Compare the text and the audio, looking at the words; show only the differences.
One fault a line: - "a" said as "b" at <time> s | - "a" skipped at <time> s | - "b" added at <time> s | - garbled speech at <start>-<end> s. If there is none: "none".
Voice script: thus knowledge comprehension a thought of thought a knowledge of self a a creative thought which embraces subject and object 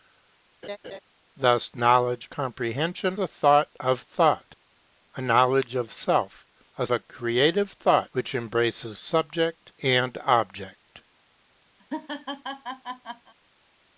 none